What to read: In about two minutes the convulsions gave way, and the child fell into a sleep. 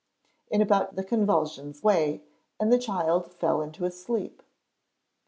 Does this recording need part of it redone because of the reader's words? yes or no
yes